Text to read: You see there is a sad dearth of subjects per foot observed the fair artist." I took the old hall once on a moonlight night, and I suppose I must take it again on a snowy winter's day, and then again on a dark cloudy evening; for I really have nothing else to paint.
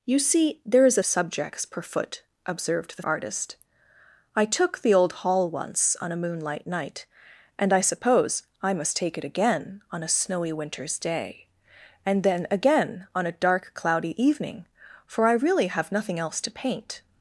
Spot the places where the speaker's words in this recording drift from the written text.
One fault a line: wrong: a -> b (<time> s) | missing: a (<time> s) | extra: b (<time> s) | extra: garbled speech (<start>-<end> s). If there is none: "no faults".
missing: sad dearth of (1.0 s)
missing: fair (3.0 s)